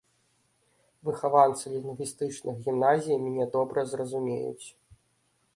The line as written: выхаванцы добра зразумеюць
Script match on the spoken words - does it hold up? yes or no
no